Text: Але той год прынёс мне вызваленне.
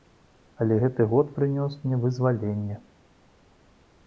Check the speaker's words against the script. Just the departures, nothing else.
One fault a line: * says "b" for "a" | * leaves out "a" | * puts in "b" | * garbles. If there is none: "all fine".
* says "гэты" for "той"